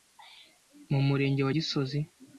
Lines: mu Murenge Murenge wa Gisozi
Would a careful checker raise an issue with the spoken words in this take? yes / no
yes